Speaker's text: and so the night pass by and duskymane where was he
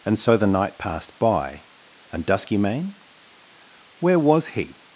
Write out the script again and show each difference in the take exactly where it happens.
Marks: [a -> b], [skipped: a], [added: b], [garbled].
and so the night [pass -> passed] by and duskymane where was he